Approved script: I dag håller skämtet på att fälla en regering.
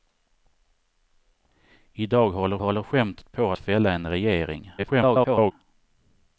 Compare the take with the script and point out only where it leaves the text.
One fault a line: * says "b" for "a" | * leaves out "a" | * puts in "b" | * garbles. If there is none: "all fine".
* puts in "håller"
* leaves out "att"
* garbles